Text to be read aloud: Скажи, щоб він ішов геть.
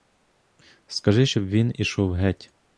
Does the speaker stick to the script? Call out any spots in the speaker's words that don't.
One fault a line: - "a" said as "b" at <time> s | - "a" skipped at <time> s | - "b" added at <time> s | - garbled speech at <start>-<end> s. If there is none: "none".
none